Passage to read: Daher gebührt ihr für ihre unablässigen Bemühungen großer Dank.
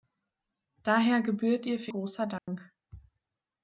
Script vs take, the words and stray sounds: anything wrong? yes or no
yes